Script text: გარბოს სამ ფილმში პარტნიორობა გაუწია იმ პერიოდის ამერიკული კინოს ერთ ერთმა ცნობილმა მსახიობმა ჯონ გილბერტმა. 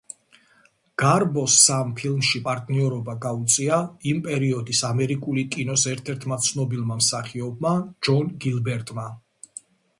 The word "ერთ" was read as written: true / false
true